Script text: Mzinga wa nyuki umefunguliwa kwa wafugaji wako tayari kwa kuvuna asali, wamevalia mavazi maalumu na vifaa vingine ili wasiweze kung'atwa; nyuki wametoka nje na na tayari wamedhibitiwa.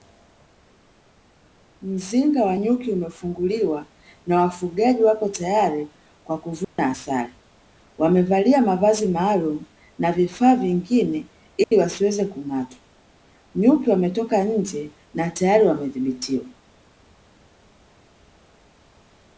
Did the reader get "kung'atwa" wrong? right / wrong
right